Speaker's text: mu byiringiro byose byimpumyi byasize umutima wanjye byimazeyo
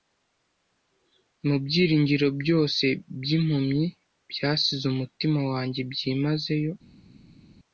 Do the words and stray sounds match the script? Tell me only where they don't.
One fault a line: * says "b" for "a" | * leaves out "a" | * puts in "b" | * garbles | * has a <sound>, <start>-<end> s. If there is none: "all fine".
all fine